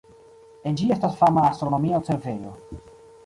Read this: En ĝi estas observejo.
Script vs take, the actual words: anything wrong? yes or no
yes